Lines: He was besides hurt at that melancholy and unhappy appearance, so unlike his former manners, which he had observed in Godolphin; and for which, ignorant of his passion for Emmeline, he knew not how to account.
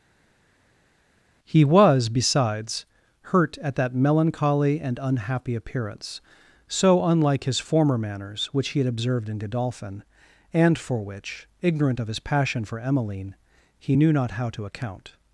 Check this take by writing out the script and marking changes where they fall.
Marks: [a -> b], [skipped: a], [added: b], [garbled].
He was besides hurt at that melancholy and unhappy appearance, so unlike his former manners, which he had observed in Godolphin; and for which, ignorant of his passion for Emmeline, he knew not how to account.